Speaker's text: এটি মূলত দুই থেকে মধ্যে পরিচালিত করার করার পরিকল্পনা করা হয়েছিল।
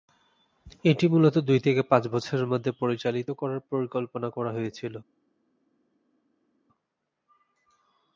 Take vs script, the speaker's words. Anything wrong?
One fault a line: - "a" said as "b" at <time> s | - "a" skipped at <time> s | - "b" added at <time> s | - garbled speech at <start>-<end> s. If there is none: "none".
- "পাঁচ বছরের" added at 1.8 s
- "করার" skipped at 3.6 s